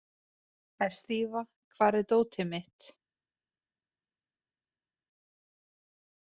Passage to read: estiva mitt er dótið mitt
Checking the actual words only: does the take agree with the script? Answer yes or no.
no